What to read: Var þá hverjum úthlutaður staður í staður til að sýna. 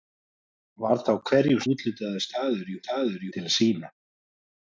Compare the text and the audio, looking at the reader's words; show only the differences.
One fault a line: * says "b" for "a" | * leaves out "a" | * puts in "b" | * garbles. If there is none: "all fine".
all fine